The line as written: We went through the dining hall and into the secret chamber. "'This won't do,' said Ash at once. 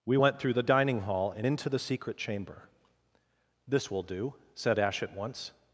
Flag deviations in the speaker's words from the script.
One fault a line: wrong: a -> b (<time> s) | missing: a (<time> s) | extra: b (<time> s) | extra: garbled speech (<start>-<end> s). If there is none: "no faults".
wrong: won't -> will (3.9 s)